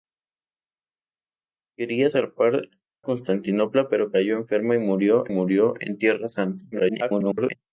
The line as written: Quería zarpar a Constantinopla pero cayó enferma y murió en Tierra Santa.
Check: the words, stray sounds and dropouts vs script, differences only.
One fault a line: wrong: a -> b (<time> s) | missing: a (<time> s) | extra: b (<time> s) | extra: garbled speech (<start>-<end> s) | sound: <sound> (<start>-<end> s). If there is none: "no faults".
missing: a (2.7 s)
extra: murió (5.3 s)
extra: garbled speech (6.7-7.6 s)